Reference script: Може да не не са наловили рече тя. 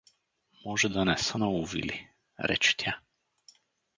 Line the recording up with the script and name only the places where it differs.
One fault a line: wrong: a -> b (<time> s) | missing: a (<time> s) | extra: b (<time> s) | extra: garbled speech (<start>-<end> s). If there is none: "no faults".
missing: не (1.2 s)